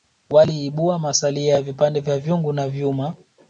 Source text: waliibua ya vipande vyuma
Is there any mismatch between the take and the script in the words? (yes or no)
yes